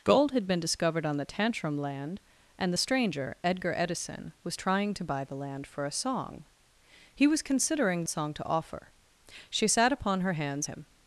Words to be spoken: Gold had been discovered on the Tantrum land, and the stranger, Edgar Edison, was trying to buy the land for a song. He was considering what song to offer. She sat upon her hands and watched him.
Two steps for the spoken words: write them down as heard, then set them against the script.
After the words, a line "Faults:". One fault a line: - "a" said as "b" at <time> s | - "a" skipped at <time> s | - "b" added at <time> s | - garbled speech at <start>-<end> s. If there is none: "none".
Gold had been discovered on the Tantrum land, and the stranger, Edgar Edison, was trying to buy the land for a song. He was considering song to offer. She sat upon her hands him.
Faults:
- "what" skipped at 8.1 s
- "and watched" skipped at 10.7 s